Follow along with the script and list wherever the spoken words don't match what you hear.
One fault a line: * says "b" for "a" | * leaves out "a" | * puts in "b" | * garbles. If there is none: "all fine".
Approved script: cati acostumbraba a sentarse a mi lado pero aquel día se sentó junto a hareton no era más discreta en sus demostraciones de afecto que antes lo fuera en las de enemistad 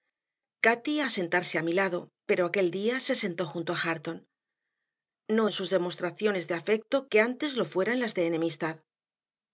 * leaves out "acostumbraba"
* leaves out "era más discreta"